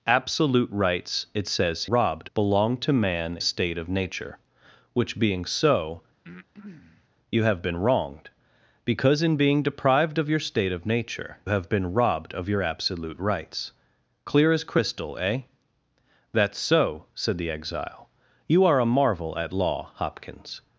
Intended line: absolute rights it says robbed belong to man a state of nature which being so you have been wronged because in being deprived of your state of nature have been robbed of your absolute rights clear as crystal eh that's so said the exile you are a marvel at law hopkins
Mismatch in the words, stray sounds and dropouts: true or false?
true